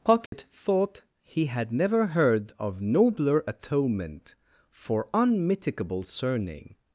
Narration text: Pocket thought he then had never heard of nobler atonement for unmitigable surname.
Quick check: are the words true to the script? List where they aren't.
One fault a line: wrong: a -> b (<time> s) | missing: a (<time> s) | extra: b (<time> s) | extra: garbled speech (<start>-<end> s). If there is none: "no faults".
missing: then (1.4 s)